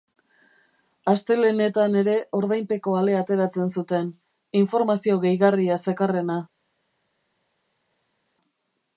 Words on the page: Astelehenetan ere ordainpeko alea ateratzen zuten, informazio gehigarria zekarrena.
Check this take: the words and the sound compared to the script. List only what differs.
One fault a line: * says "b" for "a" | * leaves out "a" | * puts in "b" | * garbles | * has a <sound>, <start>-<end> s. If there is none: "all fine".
all fine